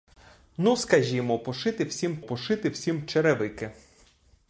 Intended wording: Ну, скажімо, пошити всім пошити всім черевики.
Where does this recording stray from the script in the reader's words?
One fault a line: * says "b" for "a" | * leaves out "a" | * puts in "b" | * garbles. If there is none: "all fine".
all fine